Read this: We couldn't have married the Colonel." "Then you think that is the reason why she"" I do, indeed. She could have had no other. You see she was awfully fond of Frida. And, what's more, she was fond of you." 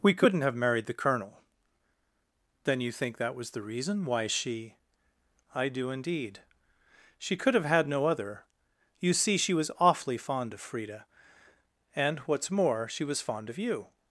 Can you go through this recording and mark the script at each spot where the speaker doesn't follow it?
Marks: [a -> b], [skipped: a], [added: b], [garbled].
We couldn't have married the Colonel." "Then you think that [is -> was] the reason why she"" I do, indeed. She could have had no other. You see she was awfully fond of Frida. And, what's more, she was fond of you."